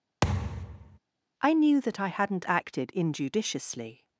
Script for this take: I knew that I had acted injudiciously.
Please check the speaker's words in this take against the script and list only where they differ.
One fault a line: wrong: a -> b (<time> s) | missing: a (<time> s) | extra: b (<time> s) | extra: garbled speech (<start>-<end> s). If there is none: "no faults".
wrong: had -> hadn't (2.1 s)